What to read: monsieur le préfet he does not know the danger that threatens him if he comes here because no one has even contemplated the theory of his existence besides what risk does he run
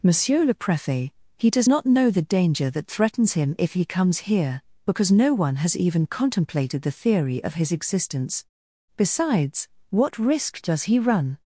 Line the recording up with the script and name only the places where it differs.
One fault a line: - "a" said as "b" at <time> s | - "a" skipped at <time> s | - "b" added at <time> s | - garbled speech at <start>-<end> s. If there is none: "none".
none